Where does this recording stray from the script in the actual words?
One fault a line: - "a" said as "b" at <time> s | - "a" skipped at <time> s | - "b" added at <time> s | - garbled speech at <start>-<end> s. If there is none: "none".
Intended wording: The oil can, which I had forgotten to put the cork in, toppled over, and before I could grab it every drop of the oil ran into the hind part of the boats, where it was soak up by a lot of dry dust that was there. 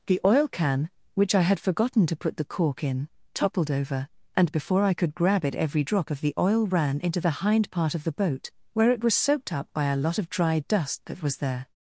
- "boats" said as "boat" at 8.1 s
- "soak" said as "soaked" at 9.1 s